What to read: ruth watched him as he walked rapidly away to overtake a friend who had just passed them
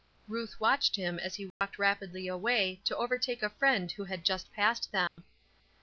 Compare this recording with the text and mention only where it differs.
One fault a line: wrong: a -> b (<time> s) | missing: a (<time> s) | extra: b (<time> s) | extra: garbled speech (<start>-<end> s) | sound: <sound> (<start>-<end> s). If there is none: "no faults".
sound: dropout (1.5-1.6 s)
sound: dropout (5.1-5.2 s)